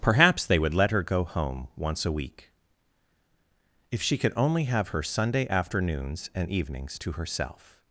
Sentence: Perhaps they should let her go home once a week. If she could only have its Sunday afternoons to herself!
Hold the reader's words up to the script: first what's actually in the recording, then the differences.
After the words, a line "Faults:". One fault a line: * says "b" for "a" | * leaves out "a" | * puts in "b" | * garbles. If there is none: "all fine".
Perhaps they would let her go home once a week. If she could only have her Sunday afternoons and evenings to herself!
Faults:
* says "would" for "should"
* says "her" for "its"
* puts in "and evenings"